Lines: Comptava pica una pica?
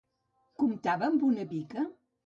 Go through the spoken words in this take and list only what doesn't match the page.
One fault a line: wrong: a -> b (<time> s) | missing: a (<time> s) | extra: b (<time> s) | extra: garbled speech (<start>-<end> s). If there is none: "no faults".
wrong: pica -> amb (1.1 s)